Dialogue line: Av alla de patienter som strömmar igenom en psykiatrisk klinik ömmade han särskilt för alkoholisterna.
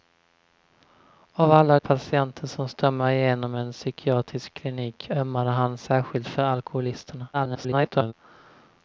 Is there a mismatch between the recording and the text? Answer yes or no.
yes